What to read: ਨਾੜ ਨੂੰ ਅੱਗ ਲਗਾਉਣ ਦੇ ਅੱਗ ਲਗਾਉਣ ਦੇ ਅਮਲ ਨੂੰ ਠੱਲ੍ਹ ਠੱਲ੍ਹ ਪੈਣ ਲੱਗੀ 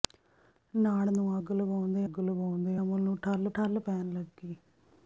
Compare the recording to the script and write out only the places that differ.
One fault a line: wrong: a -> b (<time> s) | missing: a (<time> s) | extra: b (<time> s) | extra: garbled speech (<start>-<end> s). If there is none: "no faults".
no faults